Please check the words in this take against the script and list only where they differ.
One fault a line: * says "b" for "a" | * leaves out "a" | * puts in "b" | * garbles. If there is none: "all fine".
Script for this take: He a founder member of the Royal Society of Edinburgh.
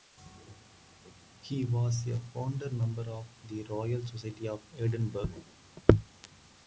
* puts in "was"